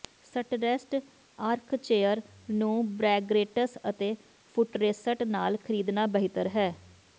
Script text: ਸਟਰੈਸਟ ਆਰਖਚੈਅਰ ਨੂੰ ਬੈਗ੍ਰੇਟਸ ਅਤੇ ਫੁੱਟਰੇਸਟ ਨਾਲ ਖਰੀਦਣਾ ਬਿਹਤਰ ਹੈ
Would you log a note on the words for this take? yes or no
no